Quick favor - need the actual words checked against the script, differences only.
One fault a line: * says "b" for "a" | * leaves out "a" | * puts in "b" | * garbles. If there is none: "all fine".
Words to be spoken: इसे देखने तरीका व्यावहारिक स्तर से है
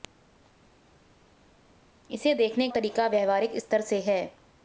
all fine